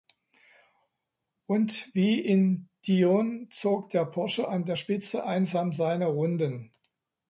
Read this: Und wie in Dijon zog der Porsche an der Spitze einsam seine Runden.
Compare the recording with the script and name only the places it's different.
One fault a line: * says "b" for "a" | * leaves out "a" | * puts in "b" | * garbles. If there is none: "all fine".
all fine